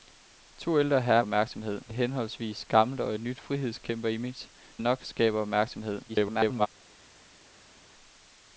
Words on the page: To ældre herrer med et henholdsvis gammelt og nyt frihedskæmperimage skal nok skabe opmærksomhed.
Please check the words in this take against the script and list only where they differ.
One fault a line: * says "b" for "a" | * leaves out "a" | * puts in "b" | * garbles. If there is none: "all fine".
* says "opmærksomhed" for "med"
* leaves out "skal"
* garbles